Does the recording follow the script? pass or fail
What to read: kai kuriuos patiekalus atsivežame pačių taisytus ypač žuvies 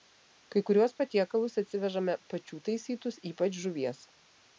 pass